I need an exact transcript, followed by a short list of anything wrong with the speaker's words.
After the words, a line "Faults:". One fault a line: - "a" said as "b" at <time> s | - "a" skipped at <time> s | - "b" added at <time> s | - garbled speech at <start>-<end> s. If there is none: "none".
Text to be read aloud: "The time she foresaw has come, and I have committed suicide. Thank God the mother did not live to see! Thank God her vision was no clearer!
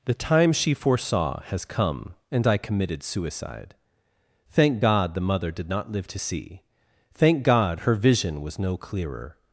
"The time she foresaw has come, and I committed suicide. Thank God the mother did not live to see! Thank God her vision was no clearer!
Faults:
- "have" skipped at 2.6 s